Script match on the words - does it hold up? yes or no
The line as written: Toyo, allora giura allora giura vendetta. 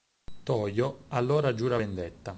no